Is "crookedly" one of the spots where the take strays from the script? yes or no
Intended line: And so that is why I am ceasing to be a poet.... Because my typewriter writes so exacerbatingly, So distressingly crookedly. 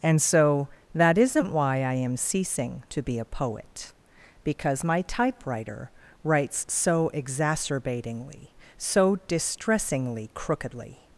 no